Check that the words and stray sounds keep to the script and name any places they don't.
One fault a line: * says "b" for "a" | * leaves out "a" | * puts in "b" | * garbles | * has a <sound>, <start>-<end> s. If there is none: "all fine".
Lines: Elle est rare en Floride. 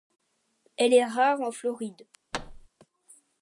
* has a thud, 2.3-2.7 s